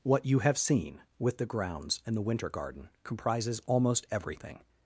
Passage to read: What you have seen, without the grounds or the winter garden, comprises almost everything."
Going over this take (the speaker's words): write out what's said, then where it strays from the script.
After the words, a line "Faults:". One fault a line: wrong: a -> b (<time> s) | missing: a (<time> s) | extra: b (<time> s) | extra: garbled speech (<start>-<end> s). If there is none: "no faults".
What you have seen, with the grounds and the winter garden, comprises almost everything."
Faults:
wrong: without -> with (1.2 s)
wrong: or -> and (2.1 s)